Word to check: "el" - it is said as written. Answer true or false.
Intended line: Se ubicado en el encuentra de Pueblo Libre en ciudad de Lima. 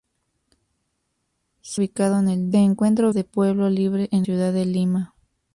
true